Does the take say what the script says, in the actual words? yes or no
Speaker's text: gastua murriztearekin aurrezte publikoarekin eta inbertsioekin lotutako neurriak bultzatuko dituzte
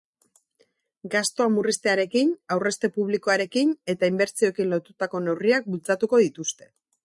yes